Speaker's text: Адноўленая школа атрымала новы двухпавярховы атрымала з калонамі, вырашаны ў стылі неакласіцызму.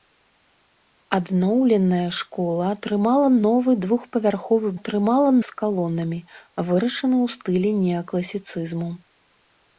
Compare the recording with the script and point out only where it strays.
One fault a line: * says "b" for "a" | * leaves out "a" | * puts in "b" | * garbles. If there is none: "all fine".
all fine